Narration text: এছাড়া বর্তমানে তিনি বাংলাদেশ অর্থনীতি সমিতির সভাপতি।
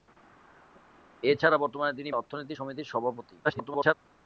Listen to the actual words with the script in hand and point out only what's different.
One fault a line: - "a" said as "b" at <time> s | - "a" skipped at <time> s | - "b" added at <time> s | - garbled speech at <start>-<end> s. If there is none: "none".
- "বাংলাদেশ" skipped at 2.1 s
- garbled speech at 3.4-3.9 s